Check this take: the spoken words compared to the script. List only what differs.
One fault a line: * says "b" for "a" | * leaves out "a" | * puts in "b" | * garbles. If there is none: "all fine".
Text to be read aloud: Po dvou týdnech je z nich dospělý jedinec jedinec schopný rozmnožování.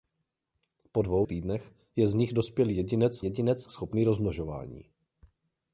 all fine